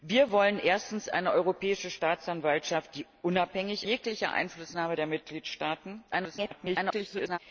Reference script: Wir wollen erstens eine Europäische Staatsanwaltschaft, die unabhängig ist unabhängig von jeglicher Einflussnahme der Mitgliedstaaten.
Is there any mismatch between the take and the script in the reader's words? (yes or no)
yes